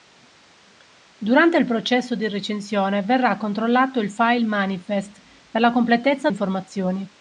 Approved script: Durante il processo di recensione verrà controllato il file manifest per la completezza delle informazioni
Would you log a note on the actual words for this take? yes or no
yes